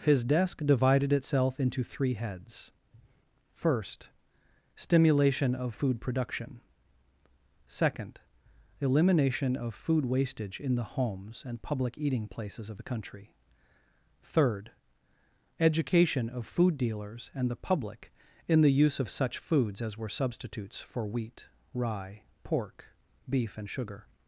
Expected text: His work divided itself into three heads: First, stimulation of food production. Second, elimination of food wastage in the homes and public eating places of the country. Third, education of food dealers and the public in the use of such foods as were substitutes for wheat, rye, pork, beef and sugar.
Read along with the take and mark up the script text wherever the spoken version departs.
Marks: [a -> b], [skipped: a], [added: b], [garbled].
His [work -> desk] divided itself into three heads: First, stimulation of food production. Second, elimination of food wastage in the homes and public eating places of the country. Third, education of food dealers and the public in the use of such foods as were substitutes for wheat, rye, pork, beef and sugar.